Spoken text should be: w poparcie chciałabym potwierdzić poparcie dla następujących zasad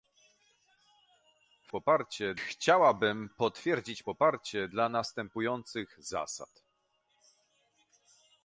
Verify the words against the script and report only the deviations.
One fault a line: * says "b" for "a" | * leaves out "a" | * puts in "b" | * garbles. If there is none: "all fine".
all fine